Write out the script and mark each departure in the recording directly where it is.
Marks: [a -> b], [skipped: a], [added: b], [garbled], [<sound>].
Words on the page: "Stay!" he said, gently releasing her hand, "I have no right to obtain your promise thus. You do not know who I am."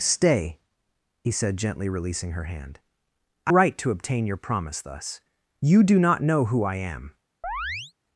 "Stay!" he said, gently releasing her hand, "I [skipped: have no] right to obtain your promise thus. You do not know who I am." [chirp]